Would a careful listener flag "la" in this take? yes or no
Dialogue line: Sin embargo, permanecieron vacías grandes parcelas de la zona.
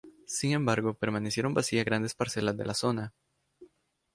no